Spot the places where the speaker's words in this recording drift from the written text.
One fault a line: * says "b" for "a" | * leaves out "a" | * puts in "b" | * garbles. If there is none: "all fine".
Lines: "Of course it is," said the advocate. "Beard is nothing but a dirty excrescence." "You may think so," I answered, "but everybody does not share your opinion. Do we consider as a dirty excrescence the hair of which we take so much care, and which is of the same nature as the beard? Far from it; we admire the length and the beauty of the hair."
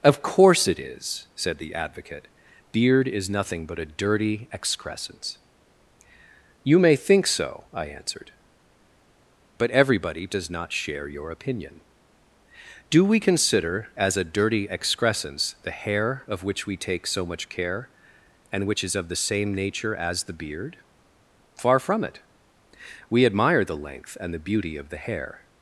all fine